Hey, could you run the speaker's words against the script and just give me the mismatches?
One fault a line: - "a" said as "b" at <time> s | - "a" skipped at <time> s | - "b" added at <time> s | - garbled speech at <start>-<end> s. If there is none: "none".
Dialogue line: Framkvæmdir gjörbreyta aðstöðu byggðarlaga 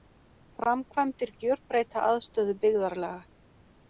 none